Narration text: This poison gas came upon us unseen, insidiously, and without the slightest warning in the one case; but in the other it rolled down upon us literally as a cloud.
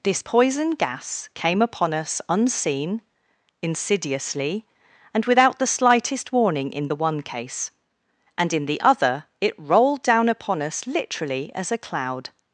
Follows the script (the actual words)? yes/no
no